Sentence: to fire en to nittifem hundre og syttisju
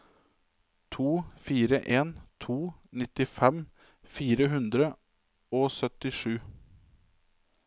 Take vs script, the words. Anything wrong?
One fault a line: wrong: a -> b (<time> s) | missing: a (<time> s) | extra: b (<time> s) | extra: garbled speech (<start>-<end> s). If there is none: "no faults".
extra: fire (4.2 s)